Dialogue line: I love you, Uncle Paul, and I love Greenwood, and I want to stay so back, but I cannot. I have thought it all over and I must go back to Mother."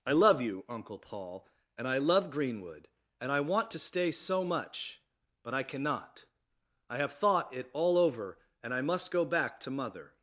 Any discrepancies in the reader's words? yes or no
yes